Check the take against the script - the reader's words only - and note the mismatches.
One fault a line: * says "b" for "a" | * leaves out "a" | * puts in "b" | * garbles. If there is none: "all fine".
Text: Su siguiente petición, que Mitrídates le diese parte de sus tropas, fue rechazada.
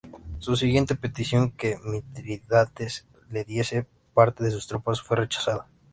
all fine